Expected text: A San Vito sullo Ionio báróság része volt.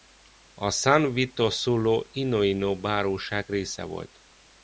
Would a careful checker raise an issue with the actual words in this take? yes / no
no